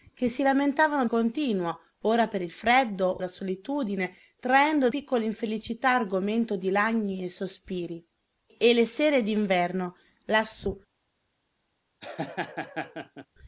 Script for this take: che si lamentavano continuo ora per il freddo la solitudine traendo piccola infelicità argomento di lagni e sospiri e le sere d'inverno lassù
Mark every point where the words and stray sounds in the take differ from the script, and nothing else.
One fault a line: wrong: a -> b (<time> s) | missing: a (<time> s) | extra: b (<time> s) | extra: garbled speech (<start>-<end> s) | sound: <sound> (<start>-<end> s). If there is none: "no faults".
sound: laugh (12.0-13.3 s)